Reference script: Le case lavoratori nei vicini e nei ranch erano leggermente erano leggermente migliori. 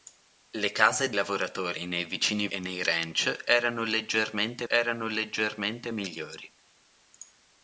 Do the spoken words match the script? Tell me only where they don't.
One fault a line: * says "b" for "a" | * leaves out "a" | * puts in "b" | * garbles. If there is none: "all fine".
all fine